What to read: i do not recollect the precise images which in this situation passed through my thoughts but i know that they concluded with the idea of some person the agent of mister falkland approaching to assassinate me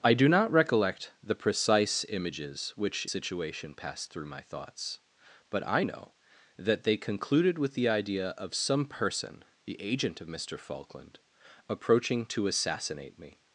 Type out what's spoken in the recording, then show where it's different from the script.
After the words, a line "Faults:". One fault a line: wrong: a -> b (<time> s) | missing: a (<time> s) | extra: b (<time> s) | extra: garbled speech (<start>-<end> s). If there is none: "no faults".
i do not recollect the precise images which situation passed through my thoughts but i know that they concluded with the idea of some person the agent of mister falkland approaching to assassinate me
Faults:
missing: in this (3.0 s)